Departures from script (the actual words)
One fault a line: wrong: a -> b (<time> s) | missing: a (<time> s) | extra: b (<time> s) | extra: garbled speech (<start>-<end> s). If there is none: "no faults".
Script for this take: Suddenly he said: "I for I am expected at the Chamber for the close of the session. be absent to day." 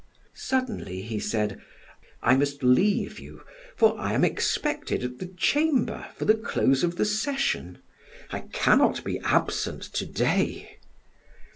extra: must leave you (2.4 s)
extra: I cannot (8.3 s)